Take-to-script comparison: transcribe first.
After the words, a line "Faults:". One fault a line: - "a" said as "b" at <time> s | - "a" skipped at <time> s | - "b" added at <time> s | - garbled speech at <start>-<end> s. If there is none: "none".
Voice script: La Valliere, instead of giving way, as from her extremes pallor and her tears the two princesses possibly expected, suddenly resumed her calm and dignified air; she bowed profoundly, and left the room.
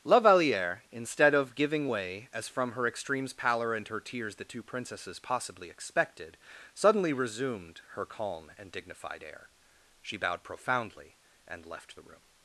La Valliere, instead of giving way, as from her extremes pallor and her tears the two princesses possibly expected, suddenly resumed her calm and dignified air; she bowed profoundly, and left the room.
Faults:
none